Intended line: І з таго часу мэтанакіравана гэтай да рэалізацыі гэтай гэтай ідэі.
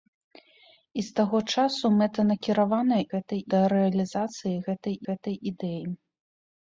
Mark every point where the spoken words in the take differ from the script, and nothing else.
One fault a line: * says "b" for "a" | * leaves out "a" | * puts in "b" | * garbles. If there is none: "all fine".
all fine